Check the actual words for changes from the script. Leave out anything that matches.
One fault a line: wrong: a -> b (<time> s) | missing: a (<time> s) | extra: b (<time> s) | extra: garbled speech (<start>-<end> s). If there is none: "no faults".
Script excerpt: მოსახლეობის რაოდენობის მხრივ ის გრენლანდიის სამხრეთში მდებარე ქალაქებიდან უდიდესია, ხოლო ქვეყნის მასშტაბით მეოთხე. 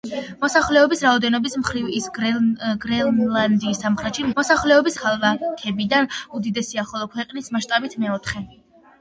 wrong: მდებარე -> მოსახლეობის (4.4 s)